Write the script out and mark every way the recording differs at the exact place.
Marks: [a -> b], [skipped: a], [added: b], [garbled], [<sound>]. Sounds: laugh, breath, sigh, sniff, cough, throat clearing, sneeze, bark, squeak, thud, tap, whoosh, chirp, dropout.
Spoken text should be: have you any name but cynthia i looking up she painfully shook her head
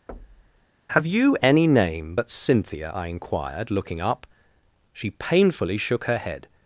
[thud] have you any name but cynthia i [added: inquired] looking up she painfully shook her head